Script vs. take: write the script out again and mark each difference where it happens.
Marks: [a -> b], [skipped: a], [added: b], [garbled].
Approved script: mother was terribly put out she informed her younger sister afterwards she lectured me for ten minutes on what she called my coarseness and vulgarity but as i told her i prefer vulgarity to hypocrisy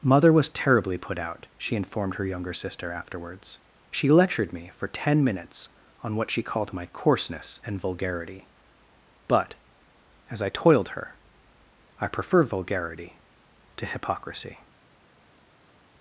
mother was terribly put out she informed her younger sister afterwards she lectured me for ten minutes on what she called my coarseness and vulgarity but as i [told -> toiled] her i prefer vulgarity to hypocrisy